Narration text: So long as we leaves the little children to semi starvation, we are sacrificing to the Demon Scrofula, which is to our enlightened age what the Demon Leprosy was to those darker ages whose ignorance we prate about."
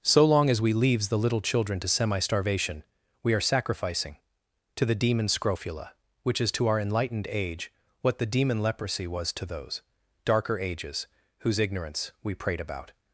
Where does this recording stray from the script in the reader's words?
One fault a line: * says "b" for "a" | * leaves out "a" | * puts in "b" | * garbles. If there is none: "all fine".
all fine